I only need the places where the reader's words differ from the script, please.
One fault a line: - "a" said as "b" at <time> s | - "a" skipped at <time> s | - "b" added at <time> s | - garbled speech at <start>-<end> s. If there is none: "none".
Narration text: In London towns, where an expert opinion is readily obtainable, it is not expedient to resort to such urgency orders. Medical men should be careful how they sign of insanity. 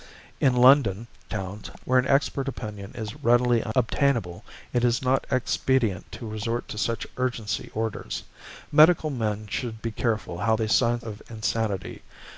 none